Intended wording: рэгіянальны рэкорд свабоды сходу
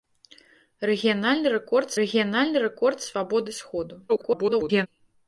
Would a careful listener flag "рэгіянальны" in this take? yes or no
no